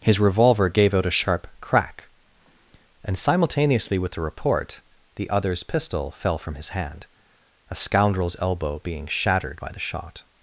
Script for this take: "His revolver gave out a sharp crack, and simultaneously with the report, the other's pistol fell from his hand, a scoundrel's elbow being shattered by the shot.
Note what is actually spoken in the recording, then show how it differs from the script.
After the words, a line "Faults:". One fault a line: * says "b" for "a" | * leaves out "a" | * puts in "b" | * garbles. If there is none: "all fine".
"His revolver gave out a sharp crack, and simultaneously with the report, the other's pistol fell from his hand, a scoundrel's elbow being shattered by the shot.
Faults:
all fine